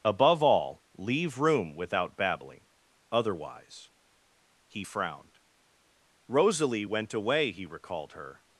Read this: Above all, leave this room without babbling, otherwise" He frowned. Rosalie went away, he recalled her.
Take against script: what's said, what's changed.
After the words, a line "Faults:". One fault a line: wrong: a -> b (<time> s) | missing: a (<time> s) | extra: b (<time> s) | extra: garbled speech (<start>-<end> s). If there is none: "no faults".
Above all, leave room without babbling, otherwise" He frowned. Rosalie went away, he recalled her.
Faults:
missing: this (1.4 s)